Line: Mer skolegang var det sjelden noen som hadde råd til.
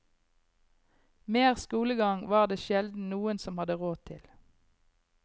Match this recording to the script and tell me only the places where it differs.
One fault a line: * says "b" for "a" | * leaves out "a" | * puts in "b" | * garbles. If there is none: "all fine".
all fine